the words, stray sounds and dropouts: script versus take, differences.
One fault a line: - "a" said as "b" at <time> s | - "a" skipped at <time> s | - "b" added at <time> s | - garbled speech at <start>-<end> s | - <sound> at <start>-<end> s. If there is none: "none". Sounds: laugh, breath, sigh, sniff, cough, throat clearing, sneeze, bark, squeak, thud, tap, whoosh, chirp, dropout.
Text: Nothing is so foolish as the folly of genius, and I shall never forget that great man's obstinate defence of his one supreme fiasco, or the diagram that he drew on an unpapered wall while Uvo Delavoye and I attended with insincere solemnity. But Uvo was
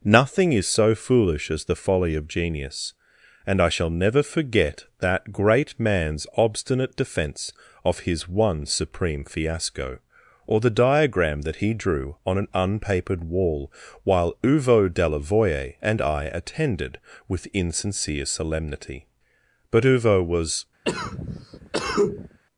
- cough at 20.8-22.4 s